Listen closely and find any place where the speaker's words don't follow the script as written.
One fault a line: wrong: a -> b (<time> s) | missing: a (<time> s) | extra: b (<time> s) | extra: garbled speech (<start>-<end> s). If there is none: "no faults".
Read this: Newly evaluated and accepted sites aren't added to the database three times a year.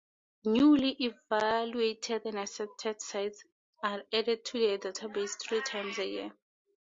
wrong: aren't -> are (3.8 s)